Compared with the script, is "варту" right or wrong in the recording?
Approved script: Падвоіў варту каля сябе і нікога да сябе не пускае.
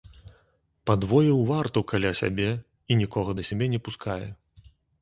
right